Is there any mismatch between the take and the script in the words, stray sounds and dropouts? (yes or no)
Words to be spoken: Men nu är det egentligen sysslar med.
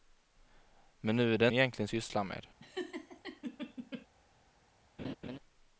yes